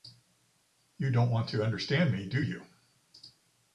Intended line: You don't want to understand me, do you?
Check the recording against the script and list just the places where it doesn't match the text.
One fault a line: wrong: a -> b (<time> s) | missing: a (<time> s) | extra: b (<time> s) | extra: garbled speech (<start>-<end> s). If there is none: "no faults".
no faults